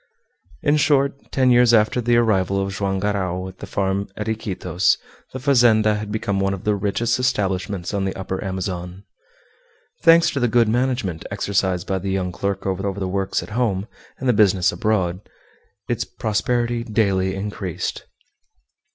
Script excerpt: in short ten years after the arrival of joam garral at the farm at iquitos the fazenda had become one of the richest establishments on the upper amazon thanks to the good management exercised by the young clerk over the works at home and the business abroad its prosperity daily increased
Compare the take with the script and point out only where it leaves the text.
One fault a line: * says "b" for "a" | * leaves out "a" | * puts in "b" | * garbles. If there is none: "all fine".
* puts in "over"